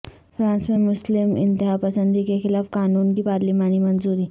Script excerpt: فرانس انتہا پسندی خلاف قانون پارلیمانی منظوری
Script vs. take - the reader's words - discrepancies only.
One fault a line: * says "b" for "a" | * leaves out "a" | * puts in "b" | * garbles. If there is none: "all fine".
* puts in "میں مسلم"
* puts in "کے"
* puts in "کی"